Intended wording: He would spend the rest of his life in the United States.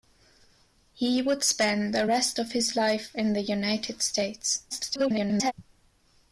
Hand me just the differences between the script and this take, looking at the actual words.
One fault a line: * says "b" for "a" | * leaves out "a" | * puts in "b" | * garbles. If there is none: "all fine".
* garbles